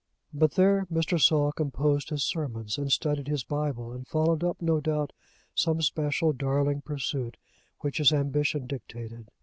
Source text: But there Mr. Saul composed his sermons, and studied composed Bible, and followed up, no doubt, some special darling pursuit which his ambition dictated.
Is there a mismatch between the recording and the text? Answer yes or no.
yes